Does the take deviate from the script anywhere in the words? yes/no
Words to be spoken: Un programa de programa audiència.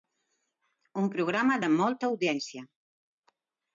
yes